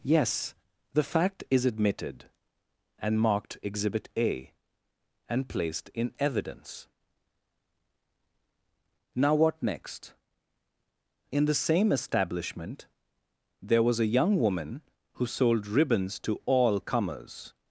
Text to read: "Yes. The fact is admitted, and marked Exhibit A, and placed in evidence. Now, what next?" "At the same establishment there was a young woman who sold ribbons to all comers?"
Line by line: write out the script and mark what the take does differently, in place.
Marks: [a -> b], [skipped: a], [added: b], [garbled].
"Yes. The fact is admitted, and marked Exhibit A, and placed in evidence. Now, what next?" ["At -> In] the same establishment there was a young woman who sold ribbons to all comers?"